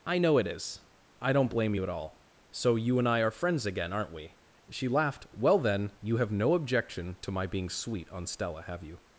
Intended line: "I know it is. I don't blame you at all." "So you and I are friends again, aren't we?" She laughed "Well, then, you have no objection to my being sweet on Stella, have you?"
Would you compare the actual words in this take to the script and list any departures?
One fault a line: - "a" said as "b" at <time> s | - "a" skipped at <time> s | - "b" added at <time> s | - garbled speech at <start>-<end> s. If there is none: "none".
none